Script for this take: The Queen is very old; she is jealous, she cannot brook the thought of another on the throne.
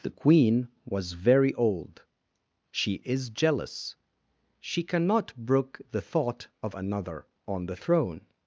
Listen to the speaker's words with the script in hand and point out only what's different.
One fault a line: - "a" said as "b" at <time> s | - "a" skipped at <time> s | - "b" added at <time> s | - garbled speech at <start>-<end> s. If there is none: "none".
- "is" said as "was" at 0.8 s